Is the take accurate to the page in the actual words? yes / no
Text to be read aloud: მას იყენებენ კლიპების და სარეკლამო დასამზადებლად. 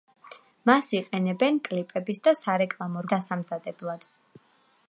yes